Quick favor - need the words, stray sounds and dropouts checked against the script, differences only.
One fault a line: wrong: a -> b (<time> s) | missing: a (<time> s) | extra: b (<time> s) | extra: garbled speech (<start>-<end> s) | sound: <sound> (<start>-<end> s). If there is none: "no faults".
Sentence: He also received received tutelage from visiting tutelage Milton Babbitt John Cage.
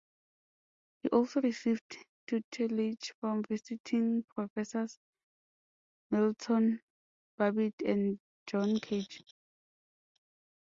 missing: received (2.0 s)
wrong: tutelage -> professors (4.3 s)
extra: and (7.8 s)